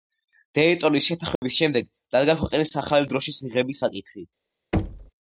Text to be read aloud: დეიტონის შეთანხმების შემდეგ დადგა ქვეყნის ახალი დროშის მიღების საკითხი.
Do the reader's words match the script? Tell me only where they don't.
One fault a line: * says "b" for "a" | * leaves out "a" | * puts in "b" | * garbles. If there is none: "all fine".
all fine